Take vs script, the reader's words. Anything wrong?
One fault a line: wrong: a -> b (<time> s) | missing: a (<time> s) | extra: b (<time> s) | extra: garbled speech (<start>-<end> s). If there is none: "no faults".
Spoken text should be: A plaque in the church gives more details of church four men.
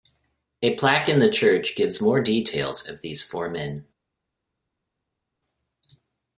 wrong: church -> these (3.0 s)